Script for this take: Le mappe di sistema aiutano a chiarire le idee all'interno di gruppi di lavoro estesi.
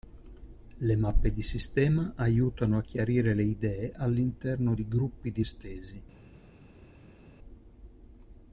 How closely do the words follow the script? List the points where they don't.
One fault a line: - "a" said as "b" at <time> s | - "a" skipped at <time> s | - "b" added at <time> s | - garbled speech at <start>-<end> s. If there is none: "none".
- "lavoro" skipped at 5.4 s